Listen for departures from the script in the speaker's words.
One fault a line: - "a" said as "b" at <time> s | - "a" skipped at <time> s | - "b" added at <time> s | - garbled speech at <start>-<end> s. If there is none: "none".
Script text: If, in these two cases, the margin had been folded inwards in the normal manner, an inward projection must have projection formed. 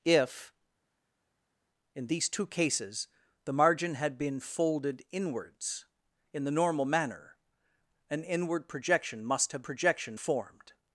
none